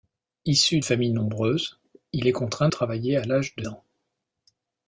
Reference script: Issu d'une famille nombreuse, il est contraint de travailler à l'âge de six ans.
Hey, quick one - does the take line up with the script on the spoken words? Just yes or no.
no